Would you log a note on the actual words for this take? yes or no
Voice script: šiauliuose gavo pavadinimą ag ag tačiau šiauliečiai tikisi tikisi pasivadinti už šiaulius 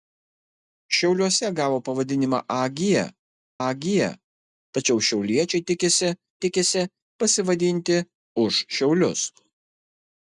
no